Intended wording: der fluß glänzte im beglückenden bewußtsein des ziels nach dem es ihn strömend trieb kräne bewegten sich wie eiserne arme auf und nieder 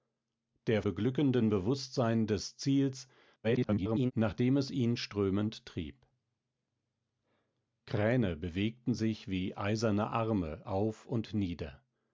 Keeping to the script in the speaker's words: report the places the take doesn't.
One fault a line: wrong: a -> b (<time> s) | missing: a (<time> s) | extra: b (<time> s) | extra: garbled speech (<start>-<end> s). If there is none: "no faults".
missing: fluß glänzte im (0.8 s)
extra: garbled speech (3.4-4.1 s)